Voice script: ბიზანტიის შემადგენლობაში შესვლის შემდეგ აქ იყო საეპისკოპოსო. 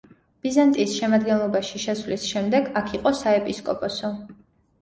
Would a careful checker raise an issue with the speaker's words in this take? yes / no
no